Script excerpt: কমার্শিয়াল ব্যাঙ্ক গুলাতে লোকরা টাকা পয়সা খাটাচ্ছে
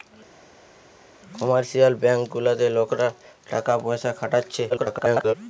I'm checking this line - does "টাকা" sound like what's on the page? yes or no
yes